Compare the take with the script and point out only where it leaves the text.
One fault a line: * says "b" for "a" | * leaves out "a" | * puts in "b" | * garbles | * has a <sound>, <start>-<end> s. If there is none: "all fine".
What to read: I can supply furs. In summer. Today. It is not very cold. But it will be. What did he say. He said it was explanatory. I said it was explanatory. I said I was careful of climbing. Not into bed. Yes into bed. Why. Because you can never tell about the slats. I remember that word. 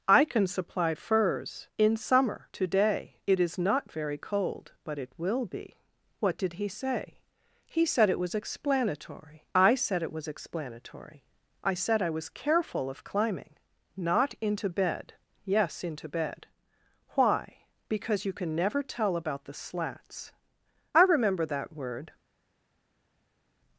all fine